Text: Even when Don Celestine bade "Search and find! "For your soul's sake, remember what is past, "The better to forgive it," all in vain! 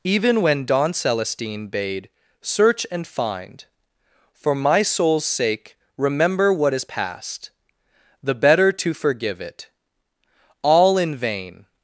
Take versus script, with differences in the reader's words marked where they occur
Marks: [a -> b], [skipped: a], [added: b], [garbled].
Even when Don Celestine bade "Search and find! "For [your -> my] soul's sake, remember what is past, "The better to forgive it," all in vain!